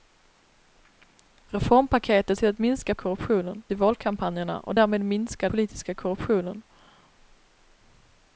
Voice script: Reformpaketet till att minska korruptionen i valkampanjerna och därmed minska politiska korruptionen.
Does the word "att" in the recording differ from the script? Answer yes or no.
no